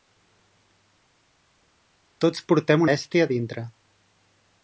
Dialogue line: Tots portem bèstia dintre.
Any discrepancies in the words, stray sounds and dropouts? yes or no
no